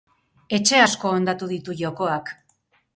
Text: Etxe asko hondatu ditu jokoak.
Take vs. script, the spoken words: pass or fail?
pass